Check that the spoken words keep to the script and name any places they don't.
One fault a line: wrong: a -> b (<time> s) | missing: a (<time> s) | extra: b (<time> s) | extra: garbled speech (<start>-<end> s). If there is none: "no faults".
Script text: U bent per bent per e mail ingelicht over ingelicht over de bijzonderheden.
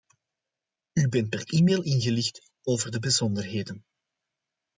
missing: bent per (1.4 s)
missing: ingelicht over (2.9 s)